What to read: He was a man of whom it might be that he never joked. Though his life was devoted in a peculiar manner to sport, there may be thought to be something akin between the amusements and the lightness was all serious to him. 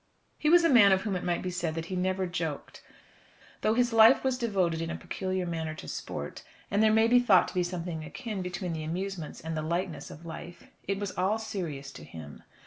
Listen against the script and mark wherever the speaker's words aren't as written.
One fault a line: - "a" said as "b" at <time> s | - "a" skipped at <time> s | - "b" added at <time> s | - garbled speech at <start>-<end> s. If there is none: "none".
- "said" added at 1.5 s
- "and" added at 6.7 s
- "of life it" added at 10.1 s